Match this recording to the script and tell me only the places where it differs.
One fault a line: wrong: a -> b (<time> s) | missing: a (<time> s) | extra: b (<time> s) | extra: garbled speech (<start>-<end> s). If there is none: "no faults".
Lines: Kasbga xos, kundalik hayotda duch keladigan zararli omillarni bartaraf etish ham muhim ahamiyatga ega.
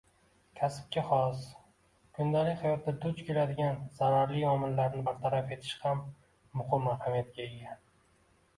no faults